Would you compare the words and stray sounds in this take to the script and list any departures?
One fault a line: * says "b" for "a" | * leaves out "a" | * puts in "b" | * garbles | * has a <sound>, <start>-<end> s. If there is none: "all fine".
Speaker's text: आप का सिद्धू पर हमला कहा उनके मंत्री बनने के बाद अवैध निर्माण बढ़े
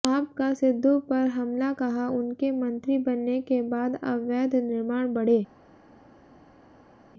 all fine